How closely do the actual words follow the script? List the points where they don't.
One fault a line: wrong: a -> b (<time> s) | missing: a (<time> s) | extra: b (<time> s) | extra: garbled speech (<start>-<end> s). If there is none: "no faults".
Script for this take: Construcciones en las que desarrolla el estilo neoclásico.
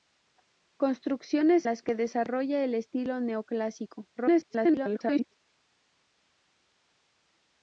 missing: en (1.7 s)
extra: garbled speech (4.2-5.3 s)